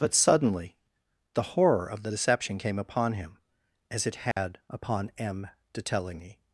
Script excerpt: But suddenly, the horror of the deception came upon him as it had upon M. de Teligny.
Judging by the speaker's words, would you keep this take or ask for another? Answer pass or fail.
pass